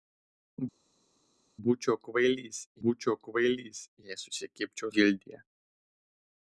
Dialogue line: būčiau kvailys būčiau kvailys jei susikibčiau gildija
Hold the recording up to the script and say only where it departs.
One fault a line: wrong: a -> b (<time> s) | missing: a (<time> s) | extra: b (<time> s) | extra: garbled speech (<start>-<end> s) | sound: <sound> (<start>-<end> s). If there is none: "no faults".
no faults